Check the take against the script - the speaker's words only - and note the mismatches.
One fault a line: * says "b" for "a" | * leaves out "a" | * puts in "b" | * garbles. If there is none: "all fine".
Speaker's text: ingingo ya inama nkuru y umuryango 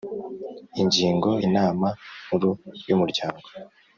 * leaves out "ya"